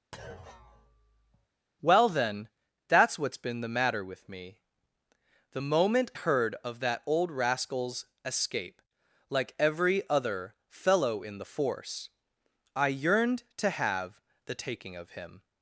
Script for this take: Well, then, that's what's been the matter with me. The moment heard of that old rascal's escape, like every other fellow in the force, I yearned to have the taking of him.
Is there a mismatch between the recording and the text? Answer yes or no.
no